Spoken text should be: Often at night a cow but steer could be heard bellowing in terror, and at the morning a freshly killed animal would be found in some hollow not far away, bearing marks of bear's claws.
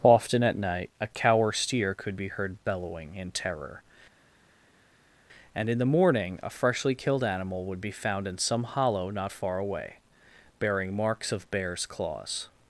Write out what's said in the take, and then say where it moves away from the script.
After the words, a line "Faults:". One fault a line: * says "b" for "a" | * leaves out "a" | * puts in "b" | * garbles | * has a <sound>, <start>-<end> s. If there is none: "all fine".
Often at night a cow or steer could be heard bellowing in terror, and in the morning a freshly killed animal would be found in some hollow not far away, bearing marks of bear's claws.
Faults:
* says "or" for "but"
* says "in" for "at"